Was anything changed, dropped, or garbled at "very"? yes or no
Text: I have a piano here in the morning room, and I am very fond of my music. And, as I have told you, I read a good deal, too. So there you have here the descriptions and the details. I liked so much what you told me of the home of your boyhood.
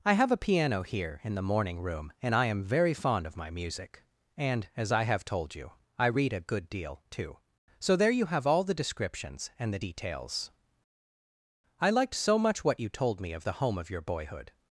no